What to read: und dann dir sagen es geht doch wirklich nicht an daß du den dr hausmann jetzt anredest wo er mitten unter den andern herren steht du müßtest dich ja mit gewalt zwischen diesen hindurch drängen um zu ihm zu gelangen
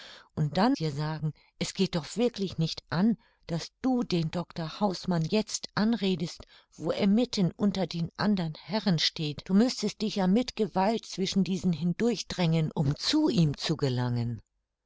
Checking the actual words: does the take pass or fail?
pass